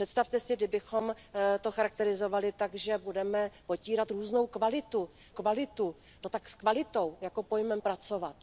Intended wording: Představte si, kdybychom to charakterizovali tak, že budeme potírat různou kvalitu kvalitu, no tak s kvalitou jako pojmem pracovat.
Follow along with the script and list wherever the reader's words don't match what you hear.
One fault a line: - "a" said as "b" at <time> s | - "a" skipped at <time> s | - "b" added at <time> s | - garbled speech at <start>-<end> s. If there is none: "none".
none